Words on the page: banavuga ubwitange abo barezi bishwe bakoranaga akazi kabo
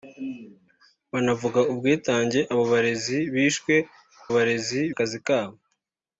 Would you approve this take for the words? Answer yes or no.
no